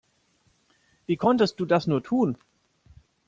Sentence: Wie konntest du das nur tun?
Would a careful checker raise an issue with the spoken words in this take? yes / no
no